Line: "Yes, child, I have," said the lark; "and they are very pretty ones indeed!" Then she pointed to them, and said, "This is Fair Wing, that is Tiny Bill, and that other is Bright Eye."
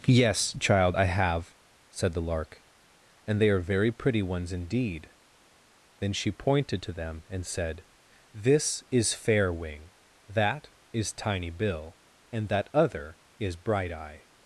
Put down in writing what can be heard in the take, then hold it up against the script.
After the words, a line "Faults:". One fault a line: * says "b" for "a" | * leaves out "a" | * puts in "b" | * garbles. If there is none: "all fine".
"Yes, child, I have," said the lark; "and they are very pretty ones indeed!" Then she pointed to them, and said, "This is Fair Wing, that is Tiny Bill, and that other is Bright Eye."
Faults:
all fine